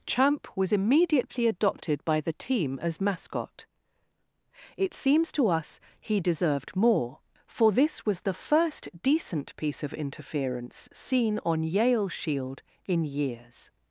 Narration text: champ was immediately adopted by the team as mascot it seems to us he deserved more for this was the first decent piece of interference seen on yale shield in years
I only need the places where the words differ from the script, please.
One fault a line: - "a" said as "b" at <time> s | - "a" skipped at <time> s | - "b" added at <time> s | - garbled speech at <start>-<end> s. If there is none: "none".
none